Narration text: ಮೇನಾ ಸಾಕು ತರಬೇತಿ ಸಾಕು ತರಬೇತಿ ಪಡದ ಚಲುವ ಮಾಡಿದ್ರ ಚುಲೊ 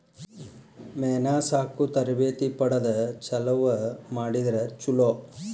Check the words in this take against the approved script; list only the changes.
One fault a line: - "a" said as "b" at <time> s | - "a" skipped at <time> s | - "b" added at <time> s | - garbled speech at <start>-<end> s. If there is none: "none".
- "ಸಾಕು ತರಬೇತಿ" skipped at 2.5 s